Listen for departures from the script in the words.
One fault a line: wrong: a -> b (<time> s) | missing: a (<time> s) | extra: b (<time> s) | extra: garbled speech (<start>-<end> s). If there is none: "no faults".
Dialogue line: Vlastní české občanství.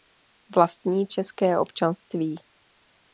no faults